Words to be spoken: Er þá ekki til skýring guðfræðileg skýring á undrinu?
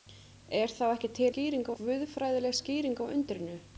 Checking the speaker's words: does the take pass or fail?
pass